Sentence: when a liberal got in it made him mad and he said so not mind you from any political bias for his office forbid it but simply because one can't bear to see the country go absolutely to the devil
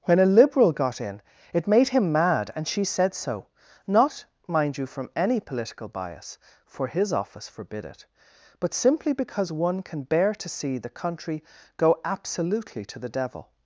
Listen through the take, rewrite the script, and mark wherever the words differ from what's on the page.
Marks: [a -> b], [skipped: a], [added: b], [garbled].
when a liberal got in it made him mad and [he -> she] said so not mind you from any political bias for his office forbid it but simply because one [can't -> can] bear to see the country go absolutely to the devil